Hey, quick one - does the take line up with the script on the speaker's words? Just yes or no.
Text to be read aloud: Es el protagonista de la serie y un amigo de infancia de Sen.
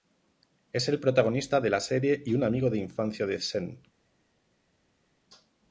yes